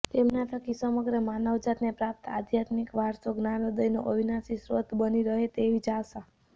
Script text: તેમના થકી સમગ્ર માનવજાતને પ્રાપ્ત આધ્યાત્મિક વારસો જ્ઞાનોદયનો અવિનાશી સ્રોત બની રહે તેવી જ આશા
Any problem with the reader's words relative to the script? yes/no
no